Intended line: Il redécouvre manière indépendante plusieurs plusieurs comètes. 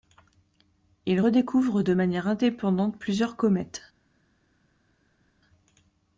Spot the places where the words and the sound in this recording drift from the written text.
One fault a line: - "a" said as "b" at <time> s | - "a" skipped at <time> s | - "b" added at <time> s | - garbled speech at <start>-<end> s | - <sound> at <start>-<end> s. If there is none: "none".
- "de" added at 1.8 s
- "plusieurs" skipped at 3.4 s